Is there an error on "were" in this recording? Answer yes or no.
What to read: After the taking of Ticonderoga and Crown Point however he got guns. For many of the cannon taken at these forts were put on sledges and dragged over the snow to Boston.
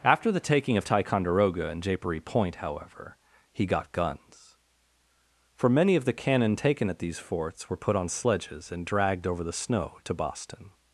no